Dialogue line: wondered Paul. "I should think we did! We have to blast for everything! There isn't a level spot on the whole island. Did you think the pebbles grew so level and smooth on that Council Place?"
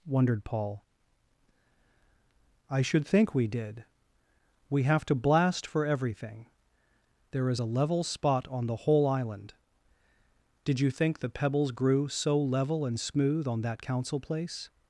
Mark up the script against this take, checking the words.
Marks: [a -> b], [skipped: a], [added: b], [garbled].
wondered Paul. "I should think we did! We have to blast for everything! There [isn't -> is] a level spot on the whole island. Did you think the pebbles grew so level and smooth on that Council Place?"